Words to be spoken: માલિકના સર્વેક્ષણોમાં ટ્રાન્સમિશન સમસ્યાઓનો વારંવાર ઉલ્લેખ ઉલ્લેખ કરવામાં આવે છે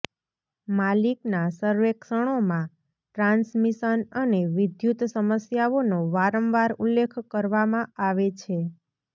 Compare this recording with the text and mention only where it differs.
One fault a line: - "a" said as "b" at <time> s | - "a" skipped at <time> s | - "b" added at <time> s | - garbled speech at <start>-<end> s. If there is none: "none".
- "અને વિદ્યુત" added at 4.2 s
- "ઉલ્લેખ" skipped at 7.2 s